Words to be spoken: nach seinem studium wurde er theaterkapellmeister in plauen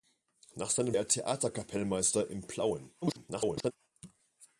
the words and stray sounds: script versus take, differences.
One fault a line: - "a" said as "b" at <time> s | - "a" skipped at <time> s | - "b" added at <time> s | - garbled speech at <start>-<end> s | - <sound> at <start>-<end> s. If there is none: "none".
- "studium wurde" skipped at 0.9 s
- garbled speech at 3.0-3.7 s